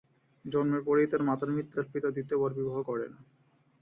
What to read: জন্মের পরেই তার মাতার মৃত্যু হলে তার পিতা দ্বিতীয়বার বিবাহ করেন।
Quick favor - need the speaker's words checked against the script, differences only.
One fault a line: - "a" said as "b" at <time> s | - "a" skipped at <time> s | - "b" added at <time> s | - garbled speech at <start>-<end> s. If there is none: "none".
- "হলে" skipped at 1.8 s